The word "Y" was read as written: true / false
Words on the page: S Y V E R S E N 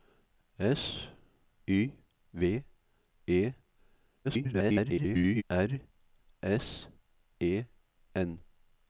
true